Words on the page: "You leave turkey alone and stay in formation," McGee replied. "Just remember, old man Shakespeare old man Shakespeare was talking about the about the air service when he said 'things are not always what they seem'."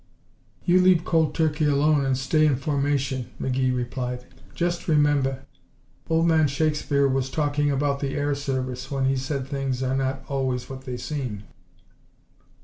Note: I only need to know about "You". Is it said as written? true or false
true